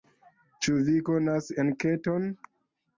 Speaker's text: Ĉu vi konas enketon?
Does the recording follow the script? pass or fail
pass